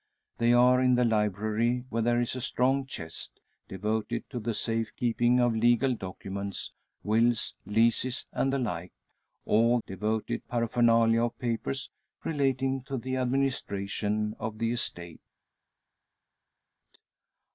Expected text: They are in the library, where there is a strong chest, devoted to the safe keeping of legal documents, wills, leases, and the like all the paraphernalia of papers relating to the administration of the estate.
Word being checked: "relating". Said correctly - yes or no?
yes